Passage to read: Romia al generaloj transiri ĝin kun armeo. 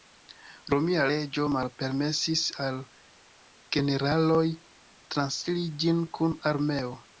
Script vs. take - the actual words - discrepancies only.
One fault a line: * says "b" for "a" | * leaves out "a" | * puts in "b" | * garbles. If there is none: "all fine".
* puts in "leĝo malpermesis"